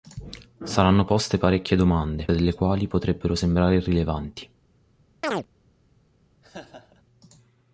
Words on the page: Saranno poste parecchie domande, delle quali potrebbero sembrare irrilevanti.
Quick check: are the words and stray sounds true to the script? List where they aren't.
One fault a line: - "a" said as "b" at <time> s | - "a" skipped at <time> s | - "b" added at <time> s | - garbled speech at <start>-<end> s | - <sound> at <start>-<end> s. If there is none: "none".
- chirp at 5.2-5.5 s
- laugh at 6.4-7.0 s